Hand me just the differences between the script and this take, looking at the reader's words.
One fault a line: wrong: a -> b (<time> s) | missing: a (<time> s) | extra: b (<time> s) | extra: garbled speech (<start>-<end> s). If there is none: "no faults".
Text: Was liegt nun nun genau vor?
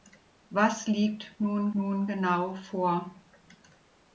no faults